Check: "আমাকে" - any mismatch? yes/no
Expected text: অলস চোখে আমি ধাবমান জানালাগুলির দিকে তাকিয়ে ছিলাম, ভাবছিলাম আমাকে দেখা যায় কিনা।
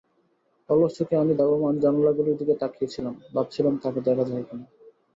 yes